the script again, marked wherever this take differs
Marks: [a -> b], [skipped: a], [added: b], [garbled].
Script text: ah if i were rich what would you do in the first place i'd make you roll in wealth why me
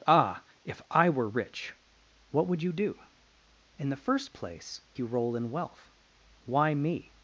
ah if i were rich what would you do in the first place [skipped: i'd make] you roll in wealth why me